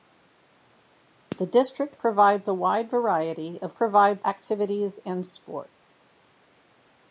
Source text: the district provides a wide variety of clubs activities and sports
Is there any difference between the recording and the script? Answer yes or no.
yes